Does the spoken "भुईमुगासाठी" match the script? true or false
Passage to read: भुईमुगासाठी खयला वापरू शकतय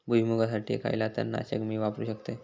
true